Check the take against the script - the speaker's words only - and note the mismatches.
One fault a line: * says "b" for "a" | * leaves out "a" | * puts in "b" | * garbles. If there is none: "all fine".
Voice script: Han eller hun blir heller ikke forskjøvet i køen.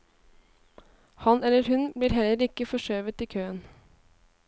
all fine